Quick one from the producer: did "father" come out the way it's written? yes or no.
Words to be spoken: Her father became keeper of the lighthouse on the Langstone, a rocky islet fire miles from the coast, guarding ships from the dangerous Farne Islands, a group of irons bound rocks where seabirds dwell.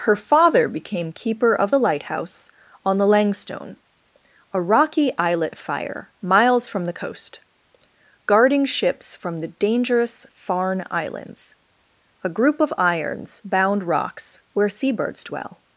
yes